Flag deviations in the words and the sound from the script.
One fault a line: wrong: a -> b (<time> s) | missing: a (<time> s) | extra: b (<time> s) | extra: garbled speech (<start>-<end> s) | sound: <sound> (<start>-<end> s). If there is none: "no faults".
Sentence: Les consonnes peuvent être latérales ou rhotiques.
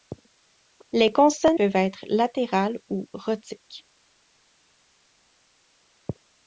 no faults